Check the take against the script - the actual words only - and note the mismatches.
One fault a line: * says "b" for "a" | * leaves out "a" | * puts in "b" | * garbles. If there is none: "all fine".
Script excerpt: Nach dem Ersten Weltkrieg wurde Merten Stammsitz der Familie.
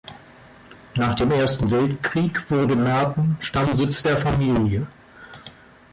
all fine